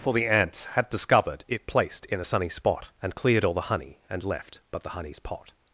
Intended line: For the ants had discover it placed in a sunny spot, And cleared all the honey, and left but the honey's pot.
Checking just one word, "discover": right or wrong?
wrong